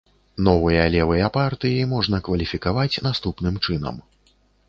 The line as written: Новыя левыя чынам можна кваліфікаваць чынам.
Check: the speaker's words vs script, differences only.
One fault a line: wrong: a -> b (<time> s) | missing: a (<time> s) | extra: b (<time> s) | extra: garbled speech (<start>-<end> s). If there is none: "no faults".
wrong: чынам -> партыі (1.4 s)
extra: наступным (3.1 s)